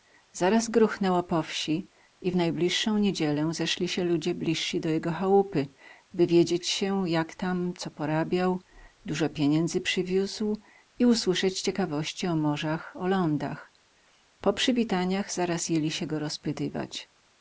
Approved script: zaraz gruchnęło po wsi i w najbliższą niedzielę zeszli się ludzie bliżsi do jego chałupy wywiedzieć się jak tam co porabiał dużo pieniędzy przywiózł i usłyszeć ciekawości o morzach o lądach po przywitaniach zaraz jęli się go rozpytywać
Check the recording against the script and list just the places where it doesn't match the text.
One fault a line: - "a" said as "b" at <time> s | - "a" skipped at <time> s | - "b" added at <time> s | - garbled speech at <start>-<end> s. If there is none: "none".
none